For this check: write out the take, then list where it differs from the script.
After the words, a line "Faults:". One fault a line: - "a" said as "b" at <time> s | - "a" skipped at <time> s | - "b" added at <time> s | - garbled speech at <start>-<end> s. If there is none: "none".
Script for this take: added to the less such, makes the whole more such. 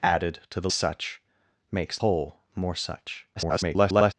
added to the such, makes whole more such. [garbled]
Faults:
- "less" skipped at 0.7 s
- "the" skipped at 2.0 s
- garbled speech at 3.4-4.1 s